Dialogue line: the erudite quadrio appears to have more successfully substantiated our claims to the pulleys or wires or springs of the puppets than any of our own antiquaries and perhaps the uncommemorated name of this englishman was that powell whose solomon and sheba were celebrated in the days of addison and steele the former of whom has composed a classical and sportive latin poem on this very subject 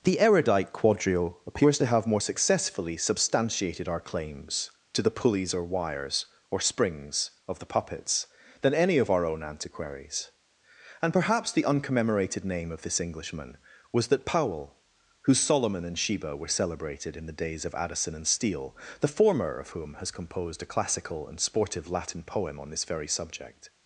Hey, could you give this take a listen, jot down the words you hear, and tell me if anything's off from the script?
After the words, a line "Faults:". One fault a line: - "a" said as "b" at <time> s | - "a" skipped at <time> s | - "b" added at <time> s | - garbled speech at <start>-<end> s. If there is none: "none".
the erudite quadrio appears to have more successfully substantiated our claims to the pulleys or wires or springs of the puppets than any of our own antiquaries and perhaps the uncommemorated name of this englishman was that powell whose solomon and sheba were celebrated in the days of addison and steele the former of whom has composed a classical and sportive latin poem on this very subject
Faults:
none